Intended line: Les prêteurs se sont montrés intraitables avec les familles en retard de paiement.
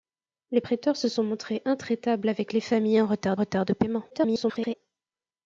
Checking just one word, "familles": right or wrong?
right